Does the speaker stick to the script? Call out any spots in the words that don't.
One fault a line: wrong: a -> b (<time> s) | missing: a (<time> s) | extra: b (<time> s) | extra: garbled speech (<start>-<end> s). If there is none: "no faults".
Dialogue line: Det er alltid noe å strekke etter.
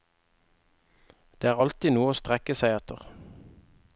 extra: seg (2.6 s)